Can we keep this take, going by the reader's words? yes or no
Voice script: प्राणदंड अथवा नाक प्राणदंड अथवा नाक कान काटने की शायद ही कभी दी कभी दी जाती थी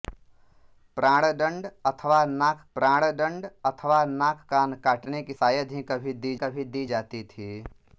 yes